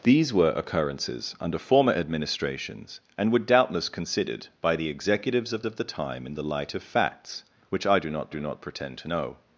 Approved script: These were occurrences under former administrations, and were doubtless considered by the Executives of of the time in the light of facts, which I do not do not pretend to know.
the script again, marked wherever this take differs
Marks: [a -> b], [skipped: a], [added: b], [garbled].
These were occurrences under former administrations, and were doubtless considered by the Executives of of the time in the light of facts, which I do not do not pretend to know.